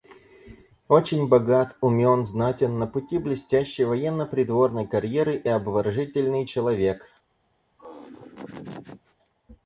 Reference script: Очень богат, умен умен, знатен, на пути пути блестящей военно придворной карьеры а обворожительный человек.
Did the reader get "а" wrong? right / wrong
wrong